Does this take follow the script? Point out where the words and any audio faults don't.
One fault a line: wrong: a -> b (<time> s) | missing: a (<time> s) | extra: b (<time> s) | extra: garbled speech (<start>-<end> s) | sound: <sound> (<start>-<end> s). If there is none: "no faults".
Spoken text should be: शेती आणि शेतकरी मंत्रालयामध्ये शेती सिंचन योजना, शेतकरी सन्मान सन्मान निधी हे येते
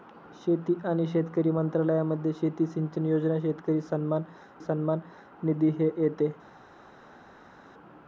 no faults